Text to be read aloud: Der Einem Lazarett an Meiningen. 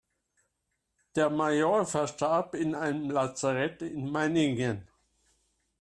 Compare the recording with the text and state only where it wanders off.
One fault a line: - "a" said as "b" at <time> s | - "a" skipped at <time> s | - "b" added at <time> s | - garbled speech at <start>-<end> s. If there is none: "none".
- "Major verstarb in" added at 1.3 s
- "an" said as "in" at 3.8 s